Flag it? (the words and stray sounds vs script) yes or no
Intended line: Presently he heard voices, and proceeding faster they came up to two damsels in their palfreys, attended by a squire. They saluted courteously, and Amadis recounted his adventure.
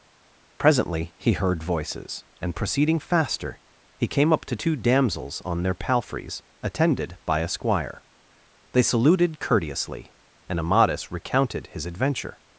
yes